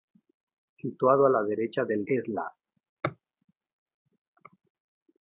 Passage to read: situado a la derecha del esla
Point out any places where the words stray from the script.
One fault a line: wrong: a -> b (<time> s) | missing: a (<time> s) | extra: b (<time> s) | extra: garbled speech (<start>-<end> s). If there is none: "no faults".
no faults